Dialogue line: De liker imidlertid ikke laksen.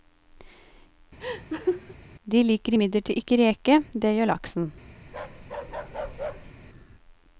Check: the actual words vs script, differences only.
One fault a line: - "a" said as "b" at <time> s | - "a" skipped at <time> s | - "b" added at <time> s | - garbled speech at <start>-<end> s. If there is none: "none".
- "reke det gjør" added at 3.4 s